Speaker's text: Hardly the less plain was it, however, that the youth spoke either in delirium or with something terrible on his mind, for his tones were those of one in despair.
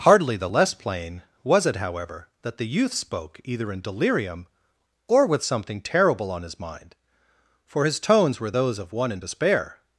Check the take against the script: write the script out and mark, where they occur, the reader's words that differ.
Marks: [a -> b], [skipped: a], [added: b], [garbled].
Hardly the less plain was it, however, that the youth spoke either in delirium or with something terrible on his mind, for his tones were those of one in despair.